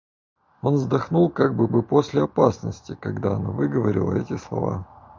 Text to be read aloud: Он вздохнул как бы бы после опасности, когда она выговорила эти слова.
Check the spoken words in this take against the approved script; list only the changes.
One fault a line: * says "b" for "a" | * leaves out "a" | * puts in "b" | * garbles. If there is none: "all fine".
all fine